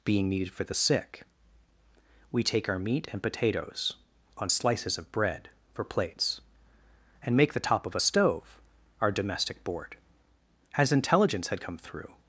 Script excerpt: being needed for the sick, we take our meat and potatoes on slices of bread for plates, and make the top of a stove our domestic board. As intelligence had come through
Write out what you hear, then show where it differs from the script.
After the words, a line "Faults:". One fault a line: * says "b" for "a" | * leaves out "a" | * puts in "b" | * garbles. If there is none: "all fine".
being needed for the sick, we take our meat and potatoes on slices of bread for plates, and make the top of a stove our domestic board. As intelligence had come through
Faults:
all fine